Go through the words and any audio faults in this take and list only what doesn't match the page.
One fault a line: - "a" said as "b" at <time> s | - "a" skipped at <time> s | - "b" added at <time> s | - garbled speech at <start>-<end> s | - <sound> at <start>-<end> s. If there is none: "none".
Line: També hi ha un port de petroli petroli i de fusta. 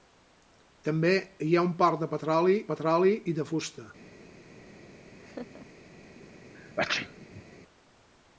- laugh at 5.2-5.7 s
- sneeze at 6.5-7.4 s